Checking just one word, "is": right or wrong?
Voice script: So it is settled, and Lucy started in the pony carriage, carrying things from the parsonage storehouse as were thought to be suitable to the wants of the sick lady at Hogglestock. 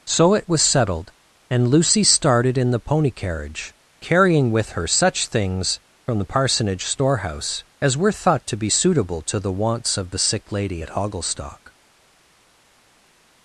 wrong